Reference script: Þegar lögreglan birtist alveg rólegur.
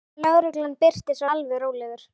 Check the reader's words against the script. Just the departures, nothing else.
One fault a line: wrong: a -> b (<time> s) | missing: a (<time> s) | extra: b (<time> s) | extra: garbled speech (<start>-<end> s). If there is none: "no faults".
no faults